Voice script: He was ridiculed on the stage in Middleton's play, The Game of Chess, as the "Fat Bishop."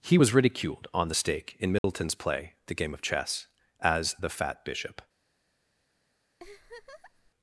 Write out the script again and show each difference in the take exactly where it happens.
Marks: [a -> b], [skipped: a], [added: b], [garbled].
He was ridiculed on the [stage -> stake] in Middleton's play, The Game of Chess, as the "Fat Bishop."